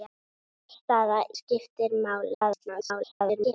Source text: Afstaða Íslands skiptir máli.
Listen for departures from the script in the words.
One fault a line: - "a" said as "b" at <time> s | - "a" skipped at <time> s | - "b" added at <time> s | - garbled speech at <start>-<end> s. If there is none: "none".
- "Íslands" skipped at 1.2 s
- garbled speech at 2.3-3.5 s